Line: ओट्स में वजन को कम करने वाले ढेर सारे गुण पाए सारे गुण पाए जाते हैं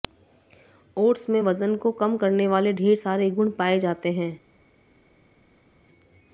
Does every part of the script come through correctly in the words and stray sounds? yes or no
no